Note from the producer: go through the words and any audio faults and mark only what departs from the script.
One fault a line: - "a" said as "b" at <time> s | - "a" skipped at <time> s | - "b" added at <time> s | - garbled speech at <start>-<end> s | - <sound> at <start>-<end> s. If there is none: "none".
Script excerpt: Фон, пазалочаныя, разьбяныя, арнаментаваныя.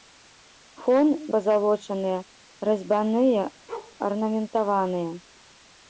- bark at 3.7-4.0 s